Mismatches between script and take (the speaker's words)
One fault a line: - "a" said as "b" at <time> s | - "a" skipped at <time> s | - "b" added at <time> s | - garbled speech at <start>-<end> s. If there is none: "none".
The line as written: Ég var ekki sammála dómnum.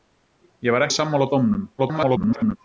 - "ekki" skipped at 0.9 s
- garbled speech at 1.8-2.6 s